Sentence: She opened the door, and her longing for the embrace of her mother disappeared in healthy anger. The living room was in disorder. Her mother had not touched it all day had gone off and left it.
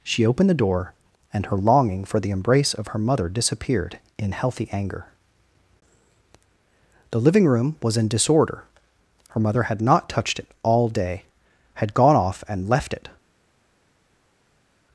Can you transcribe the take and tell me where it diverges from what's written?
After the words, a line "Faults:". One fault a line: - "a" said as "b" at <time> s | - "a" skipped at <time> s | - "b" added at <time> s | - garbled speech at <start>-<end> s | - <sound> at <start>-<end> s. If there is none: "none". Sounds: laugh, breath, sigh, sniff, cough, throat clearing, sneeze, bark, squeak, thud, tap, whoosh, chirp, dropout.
She opened the door, and her longing for the embrace of her mother disappeared in healthy anger. The living room was in disorder. Her mother had not touched it all day had gone off and left it.
Faults:
none